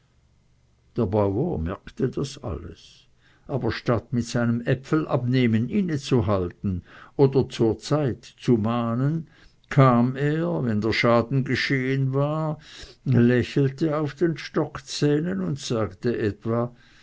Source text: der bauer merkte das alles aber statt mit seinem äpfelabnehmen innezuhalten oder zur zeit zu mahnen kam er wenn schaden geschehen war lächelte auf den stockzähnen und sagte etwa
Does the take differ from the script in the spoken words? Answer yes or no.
yes